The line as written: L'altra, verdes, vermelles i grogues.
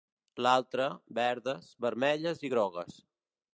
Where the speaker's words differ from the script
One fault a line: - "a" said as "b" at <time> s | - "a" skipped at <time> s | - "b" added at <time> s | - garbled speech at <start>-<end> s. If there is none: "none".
none